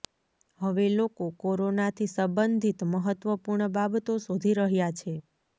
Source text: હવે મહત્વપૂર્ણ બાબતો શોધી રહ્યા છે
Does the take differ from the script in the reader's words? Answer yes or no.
yes